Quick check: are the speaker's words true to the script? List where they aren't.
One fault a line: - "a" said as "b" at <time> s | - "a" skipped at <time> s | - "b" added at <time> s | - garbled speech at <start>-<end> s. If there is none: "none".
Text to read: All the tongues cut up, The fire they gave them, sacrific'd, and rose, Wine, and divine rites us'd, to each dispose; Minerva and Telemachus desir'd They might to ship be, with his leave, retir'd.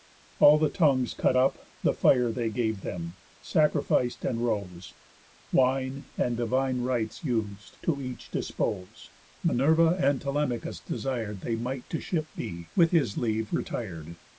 none